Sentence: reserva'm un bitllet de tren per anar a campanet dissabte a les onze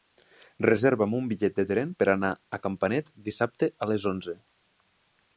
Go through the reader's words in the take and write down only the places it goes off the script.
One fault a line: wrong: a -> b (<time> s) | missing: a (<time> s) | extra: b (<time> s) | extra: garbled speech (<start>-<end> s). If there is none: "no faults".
no faults